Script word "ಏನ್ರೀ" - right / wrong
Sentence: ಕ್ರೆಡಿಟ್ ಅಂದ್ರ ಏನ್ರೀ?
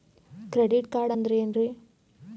right